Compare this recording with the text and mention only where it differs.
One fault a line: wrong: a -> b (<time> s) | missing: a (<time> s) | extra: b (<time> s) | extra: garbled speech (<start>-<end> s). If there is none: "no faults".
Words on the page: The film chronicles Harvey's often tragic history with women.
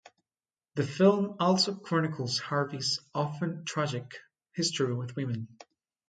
extra: also (1.4 s)